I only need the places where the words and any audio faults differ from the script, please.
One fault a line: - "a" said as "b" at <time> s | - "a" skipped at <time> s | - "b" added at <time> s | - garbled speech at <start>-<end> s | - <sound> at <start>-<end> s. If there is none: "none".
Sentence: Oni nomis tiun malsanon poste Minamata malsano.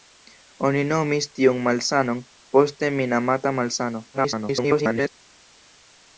- garbled speech at 4.1-5.1 s